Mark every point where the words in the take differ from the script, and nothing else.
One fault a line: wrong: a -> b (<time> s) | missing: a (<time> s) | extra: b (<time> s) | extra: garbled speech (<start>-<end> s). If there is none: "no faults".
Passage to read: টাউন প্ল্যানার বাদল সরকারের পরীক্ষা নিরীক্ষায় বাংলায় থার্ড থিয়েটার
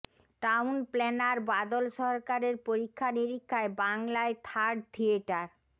no faults